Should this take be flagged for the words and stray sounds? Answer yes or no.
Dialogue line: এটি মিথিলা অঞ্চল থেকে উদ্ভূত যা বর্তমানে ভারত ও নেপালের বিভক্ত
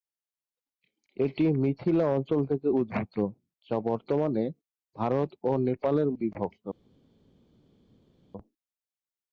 no